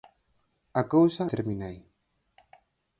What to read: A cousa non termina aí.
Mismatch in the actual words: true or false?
true